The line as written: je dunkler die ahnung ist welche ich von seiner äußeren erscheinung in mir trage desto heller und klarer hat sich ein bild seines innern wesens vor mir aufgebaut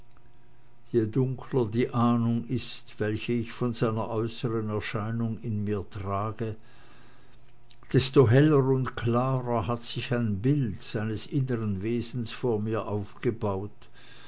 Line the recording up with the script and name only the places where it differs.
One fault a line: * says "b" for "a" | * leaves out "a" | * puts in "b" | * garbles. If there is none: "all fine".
all fine